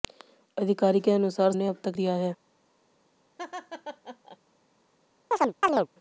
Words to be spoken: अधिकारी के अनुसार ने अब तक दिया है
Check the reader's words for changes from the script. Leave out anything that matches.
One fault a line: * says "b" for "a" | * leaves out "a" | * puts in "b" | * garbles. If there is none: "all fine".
all fine